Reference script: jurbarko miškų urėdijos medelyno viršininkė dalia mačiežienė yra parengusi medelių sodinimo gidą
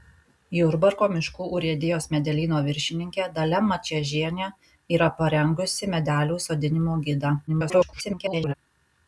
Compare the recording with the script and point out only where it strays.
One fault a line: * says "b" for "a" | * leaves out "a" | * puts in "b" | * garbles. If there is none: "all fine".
* garbles